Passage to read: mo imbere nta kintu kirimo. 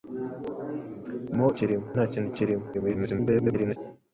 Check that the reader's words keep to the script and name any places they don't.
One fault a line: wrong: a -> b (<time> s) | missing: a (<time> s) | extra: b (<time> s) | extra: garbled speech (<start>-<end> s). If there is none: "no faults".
wrong: imbere -> kirimo (1.6 s)
extra: garbled speech (2.7-3.8 s)